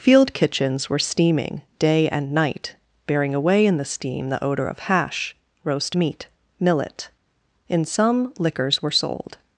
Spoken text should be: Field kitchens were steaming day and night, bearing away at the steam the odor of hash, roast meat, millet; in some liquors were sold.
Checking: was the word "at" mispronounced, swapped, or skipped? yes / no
yes